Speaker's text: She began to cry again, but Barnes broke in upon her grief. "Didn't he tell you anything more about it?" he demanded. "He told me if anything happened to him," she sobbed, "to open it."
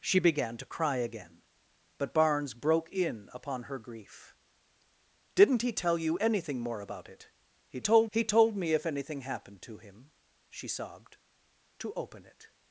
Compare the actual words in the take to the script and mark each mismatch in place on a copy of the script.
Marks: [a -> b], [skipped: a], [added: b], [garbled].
She began to cry again, but Barnes broke in upon her grief. "Didn't he tell you anything more about it?" he [demanded. -> told] "He told me if anything happened to him," she sobbed, "to open it."